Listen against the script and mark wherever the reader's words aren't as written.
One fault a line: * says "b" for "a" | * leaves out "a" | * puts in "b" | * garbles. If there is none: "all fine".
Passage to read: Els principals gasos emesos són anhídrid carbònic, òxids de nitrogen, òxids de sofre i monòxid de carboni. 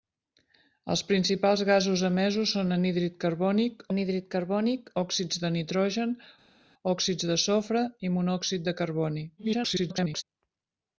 * puts in "anhídrid carbònic"
* garbles